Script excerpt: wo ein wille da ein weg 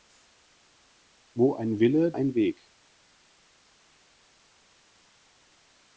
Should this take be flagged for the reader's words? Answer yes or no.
yes